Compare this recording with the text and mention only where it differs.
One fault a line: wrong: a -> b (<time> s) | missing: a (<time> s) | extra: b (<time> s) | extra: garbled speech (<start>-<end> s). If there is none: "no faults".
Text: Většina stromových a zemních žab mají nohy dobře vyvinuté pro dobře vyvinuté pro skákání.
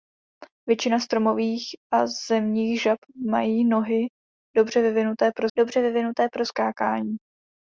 no faults